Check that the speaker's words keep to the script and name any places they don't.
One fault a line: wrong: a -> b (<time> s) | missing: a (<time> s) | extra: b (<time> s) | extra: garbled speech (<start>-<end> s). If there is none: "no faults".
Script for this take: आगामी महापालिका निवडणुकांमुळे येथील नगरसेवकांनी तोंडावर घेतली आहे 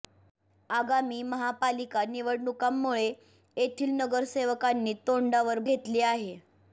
no faults